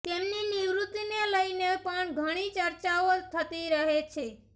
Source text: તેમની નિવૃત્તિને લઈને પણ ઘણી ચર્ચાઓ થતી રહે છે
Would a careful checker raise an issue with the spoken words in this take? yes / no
no